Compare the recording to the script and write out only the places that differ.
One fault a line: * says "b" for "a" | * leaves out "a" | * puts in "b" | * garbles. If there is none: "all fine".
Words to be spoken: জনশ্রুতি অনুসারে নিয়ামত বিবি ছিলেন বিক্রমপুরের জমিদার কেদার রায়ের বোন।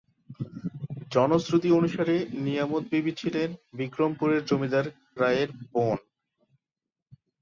* leaves out "কেদার"